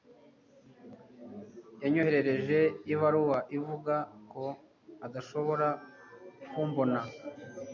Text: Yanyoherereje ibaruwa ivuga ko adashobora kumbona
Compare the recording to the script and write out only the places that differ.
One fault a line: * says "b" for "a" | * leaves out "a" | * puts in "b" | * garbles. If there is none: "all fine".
all fine